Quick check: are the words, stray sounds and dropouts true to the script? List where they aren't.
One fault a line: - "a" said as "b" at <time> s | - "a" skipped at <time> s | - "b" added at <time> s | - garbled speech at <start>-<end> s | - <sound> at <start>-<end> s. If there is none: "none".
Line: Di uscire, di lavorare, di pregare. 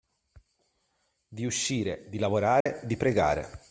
- dropout at 2.6-2.7 s